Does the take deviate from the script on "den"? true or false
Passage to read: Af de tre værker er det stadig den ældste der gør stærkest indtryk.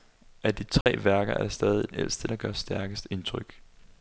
true